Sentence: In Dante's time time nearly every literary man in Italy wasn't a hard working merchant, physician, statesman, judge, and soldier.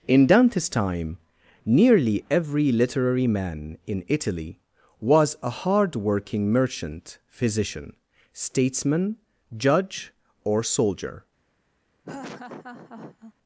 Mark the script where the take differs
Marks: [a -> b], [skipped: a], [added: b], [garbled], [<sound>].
In Dante's time [skipped: time] nearly every literary man in Italy [wasn't -> was] a hard working merchant, physician, statesman, judge, [and -> or] soldier. [laugh]